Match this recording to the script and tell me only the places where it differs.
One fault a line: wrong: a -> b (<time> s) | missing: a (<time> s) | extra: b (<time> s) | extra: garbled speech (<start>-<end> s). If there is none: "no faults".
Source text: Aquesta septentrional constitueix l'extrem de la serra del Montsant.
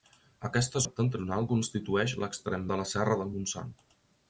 no faults